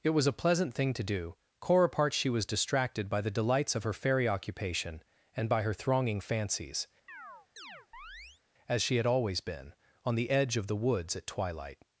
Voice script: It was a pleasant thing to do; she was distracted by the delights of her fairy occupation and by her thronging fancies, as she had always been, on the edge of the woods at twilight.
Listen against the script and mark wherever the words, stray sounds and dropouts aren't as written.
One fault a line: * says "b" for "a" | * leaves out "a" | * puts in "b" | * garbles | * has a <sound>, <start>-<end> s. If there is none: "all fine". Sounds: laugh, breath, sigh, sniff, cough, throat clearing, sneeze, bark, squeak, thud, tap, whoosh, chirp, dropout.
* puts in "core apart"
* has a chirp, 7.1-8.4 s